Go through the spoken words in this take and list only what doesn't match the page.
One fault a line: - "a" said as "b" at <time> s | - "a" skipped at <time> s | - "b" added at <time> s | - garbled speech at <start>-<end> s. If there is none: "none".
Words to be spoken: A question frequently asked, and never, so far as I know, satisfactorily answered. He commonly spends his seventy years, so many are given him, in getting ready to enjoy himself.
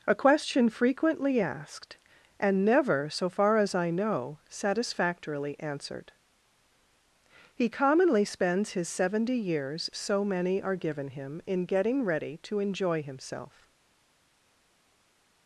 none